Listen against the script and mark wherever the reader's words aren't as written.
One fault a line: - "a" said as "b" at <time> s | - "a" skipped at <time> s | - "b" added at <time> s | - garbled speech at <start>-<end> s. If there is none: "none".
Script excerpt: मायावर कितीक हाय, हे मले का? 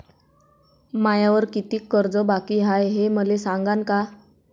- "कर्ज बाकी" added at 1.9 s
- "सांगान" added at 3.4 s